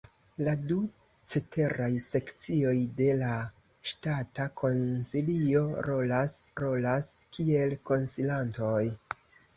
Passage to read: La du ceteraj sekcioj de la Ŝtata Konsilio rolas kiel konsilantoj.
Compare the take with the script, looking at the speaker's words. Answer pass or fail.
fail